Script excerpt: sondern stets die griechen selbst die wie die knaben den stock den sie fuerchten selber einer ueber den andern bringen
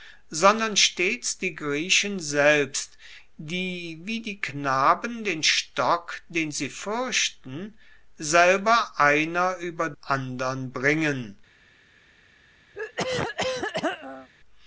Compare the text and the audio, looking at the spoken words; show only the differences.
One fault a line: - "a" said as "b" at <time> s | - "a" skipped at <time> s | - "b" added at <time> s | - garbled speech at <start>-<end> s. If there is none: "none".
- "den" skipped at 9.9 s